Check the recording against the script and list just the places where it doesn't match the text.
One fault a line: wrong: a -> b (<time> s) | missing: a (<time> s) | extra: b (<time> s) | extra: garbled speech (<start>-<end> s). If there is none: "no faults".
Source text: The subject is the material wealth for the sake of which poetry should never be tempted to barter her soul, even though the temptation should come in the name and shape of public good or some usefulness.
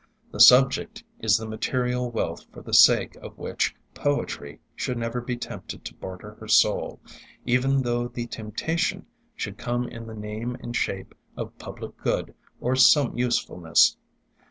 no faults